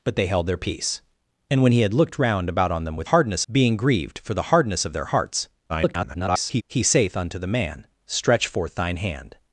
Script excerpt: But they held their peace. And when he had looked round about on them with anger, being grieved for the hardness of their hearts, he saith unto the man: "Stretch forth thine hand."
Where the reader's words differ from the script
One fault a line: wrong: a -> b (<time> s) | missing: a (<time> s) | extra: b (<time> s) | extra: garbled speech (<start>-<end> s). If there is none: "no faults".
wrong: anger -> hardness (3.0 s)
extra: garbled speech (5.7-6.6 s)